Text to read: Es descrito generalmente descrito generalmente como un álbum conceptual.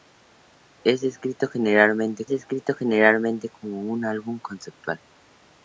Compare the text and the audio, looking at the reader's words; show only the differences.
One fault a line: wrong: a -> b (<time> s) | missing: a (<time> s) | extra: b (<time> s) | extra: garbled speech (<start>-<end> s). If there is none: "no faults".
no faults